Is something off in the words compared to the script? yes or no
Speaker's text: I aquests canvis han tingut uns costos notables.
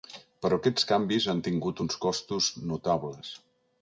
yes